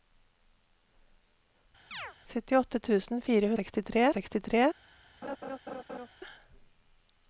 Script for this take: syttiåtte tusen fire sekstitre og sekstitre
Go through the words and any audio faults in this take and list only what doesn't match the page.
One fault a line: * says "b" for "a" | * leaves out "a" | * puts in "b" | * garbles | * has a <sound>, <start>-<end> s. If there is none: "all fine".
* has a chirp, 1.9-2.2 s
* has a laugh, 5.2-6.1 s